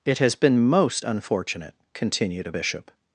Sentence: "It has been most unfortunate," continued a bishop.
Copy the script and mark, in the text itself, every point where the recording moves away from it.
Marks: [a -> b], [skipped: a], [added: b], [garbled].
"It has been most unfortunate," continued a bishop.